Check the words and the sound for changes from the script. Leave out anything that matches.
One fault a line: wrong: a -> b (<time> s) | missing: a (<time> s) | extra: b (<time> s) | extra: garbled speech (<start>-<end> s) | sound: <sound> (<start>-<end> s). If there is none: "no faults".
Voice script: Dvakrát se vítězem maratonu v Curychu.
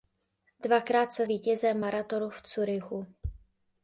no faults